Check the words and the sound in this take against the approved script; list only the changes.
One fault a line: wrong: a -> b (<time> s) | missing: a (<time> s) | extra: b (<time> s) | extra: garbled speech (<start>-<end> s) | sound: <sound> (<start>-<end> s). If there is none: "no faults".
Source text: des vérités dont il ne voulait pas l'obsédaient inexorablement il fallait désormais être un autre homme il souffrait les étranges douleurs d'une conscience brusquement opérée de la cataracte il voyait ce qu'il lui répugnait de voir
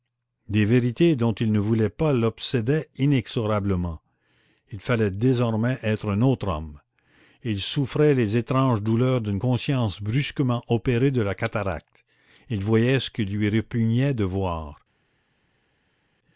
no faults